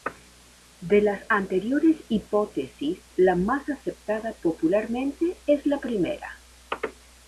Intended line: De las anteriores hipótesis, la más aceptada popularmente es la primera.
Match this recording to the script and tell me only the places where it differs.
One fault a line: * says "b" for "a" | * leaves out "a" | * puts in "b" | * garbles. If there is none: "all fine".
all fine